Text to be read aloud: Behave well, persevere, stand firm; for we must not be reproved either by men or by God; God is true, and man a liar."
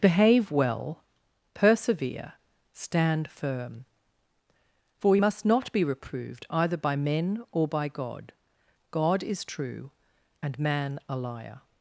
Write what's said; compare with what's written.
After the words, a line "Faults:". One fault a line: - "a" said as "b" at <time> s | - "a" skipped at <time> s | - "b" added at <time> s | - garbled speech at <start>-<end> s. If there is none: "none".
Behave well, persevere, stand firm; for we must not be reproved either by men or by God; God is true, and man a liar."
Faults:
none